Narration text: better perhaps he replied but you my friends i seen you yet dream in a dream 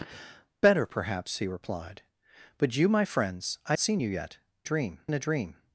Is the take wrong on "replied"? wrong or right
right